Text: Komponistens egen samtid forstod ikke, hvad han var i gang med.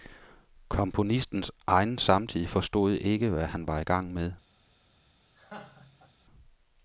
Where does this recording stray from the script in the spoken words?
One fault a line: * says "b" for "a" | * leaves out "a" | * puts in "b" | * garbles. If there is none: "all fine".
all fine